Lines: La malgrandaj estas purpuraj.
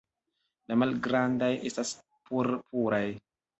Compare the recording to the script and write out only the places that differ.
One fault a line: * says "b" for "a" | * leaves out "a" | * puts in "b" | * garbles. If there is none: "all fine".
all fine